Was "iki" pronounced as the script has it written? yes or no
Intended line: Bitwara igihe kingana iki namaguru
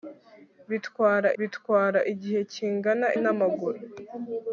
no